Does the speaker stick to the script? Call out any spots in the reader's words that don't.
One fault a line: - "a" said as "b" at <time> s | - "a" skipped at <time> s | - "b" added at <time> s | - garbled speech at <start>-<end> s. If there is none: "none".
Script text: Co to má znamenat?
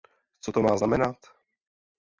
none